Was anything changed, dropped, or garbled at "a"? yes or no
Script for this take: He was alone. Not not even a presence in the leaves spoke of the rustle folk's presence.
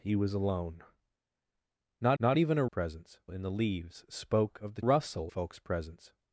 no